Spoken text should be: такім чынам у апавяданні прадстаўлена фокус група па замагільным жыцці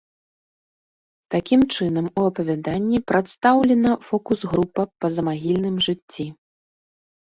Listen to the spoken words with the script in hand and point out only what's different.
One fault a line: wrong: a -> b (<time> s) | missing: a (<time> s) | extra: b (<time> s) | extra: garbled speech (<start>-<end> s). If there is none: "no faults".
no faults